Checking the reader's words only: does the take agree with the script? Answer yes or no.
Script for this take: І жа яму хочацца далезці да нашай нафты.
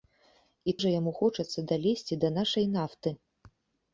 yes